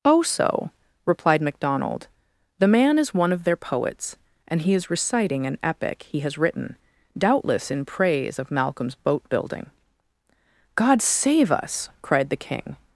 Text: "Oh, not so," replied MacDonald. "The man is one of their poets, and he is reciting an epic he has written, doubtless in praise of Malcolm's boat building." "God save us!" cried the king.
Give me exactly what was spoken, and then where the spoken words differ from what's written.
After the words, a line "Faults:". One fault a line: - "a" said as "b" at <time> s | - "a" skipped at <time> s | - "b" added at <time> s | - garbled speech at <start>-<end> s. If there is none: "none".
"Oh, so," replied MacDonald. "The man is one of their poets, and he is reciting an epic he has written, doubtless in praise of Malcolm's boat building." "God save us!" cried the king.
Faults:
- "not" skipped at 0.2 s